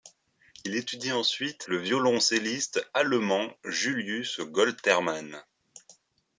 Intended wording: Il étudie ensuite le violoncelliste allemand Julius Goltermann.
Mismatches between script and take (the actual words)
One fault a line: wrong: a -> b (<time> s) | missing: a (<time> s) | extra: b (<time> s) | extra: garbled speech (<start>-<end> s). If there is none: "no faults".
no faults